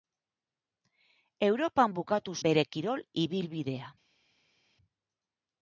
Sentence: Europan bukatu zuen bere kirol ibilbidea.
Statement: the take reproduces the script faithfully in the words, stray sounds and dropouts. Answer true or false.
false